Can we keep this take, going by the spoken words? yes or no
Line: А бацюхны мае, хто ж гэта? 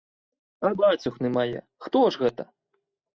yes